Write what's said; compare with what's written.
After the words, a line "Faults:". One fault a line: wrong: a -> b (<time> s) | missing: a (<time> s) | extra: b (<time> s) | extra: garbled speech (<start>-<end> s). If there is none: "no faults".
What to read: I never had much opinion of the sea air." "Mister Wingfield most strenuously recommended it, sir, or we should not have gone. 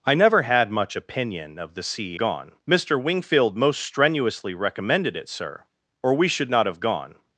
I never had much opinion of the sea gone." "Mister Wingfield most strenuously recommended it, sir, or we should not have gone.
Faults:
wrong: air -> gone (2.2 s)